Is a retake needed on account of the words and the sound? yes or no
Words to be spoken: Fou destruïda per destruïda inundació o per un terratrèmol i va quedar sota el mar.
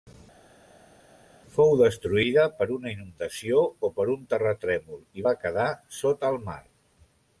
yes